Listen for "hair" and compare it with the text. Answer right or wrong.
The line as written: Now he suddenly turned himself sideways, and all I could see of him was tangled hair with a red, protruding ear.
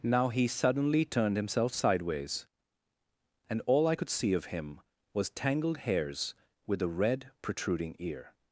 wrong